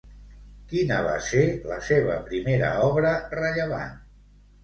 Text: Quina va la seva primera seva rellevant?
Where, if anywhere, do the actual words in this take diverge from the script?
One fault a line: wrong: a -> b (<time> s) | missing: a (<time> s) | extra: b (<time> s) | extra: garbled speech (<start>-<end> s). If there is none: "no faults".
extra: ser (1.2 s)
wrong: seva -> obra (2.9 s)